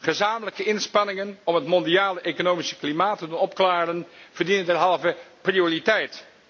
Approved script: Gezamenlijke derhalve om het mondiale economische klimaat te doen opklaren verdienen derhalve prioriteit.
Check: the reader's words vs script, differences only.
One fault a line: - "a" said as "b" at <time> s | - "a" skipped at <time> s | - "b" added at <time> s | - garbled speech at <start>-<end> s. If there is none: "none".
- "derhalve" said as "inspanningen" at 0.6 s